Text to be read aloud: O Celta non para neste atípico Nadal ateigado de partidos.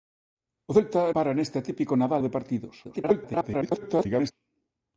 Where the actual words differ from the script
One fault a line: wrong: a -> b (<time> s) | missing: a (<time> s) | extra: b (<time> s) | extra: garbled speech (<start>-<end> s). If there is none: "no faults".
missing: non (1.0 s)
missing: ateigado (2.2 s)
extra: garbled speech (2.8-4.3 s)